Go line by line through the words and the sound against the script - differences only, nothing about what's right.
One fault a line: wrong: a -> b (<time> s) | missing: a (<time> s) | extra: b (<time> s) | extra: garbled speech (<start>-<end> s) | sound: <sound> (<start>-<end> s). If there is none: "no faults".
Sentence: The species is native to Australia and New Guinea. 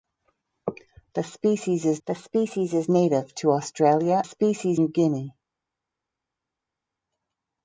extra: the species is (2.1 s)
wrong: and -> species (4.2 s)